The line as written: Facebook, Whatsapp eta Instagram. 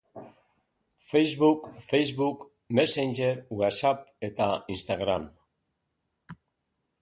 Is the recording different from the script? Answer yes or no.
yes